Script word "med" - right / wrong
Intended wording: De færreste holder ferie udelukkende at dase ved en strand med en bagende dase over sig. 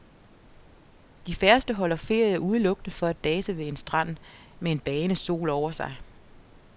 right